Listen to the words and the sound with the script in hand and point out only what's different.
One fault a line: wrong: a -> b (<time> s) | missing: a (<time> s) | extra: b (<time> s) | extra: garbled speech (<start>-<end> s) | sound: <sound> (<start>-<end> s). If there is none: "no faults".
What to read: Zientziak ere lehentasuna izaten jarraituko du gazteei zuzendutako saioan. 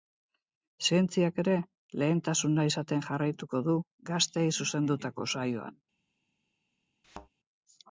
sound: thud (7.0-7.3 s)